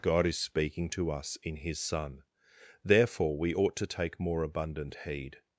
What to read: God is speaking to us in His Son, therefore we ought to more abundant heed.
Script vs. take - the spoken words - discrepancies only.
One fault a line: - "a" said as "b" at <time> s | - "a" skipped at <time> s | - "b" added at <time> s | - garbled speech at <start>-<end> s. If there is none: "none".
- "take" added at 3.9 s